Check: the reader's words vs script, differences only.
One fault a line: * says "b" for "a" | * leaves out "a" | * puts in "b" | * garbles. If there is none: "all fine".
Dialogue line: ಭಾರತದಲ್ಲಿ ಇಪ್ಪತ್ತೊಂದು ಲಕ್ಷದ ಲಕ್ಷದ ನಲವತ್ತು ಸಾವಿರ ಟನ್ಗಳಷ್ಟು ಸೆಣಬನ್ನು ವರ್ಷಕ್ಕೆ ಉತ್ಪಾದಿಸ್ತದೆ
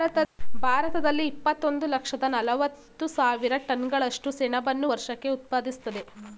* leaves out "ಲಕ್ಷದ"